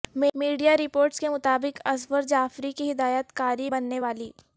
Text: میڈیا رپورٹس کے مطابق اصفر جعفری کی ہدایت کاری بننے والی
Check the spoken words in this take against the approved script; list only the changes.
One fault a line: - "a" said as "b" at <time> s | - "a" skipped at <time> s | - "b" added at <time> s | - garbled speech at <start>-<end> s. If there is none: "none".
none